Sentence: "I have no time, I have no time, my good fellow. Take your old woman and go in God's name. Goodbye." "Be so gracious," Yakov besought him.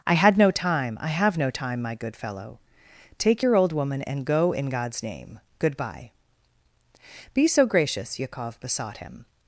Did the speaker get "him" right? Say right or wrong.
right